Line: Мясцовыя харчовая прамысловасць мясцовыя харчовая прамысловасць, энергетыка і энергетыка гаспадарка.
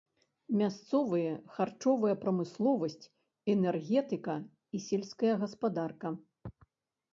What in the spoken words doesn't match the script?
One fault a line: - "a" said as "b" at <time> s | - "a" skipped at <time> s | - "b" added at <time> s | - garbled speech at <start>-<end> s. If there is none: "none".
- "мясцовыя харчовая прамысловасць" skipped at 3.1 s
- "энергетыка" said as "сельская" at 4.9 s